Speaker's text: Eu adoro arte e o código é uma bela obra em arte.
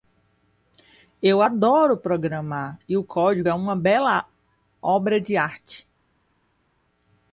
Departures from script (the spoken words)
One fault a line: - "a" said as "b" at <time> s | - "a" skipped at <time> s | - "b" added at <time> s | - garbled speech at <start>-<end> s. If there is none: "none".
- "arte" said as "programar" at 2.0 s
- "em" said as "de" at 5.2 s